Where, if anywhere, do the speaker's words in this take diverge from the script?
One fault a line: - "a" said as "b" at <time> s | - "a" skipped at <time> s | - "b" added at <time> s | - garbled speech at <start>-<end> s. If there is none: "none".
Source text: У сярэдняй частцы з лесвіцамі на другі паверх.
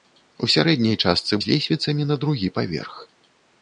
none